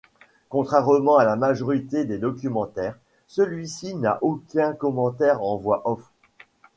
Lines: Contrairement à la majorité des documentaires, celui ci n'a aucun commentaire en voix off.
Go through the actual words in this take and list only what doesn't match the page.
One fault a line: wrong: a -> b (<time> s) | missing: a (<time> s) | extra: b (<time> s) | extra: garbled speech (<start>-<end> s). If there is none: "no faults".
no faults